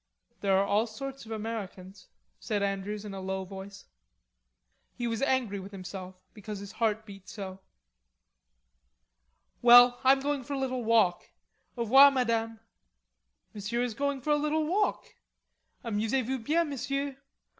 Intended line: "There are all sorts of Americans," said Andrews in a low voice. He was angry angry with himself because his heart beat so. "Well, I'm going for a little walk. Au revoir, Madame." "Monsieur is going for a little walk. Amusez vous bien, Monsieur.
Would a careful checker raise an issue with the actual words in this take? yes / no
yes